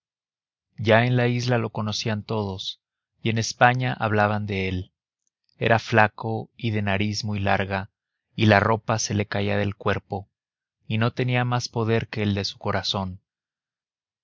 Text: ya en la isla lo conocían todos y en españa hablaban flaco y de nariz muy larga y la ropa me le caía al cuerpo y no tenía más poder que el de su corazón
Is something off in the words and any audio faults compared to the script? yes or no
yes